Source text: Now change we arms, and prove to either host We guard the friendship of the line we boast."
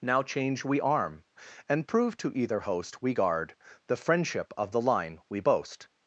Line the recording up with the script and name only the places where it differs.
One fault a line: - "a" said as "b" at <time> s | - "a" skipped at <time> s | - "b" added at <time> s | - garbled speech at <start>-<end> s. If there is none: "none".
- "arms" said as "arm" at 0.8 s